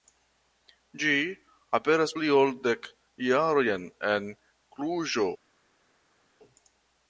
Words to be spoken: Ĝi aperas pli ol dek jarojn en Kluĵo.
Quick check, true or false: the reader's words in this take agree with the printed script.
true